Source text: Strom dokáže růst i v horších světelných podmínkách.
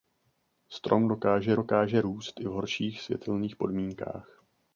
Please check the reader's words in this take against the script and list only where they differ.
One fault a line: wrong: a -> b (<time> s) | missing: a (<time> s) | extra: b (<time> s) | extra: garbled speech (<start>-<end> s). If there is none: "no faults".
extra: dokáže (1.5 s)